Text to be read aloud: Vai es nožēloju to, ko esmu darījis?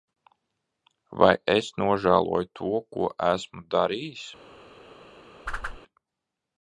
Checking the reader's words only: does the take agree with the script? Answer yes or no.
yes